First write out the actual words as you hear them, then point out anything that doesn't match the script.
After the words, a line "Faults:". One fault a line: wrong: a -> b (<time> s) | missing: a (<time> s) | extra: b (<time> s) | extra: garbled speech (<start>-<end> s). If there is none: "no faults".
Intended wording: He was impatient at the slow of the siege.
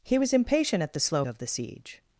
He was impatient at the slow of the siege.
Faults:
no faults